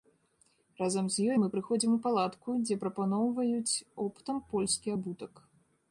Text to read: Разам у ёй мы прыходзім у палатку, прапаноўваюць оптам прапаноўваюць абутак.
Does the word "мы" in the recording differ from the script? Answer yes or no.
no